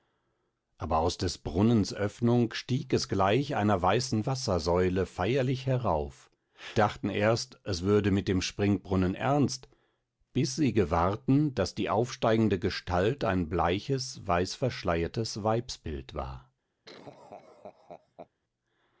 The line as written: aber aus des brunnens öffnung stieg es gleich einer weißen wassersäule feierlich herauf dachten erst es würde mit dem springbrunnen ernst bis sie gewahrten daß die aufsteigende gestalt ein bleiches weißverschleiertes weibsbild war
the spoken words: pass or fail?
pass